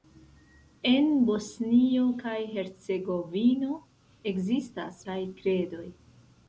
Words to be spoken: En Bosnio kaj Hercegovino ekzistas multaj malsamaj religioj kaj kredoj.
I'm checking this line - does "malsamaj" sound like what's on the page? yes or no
no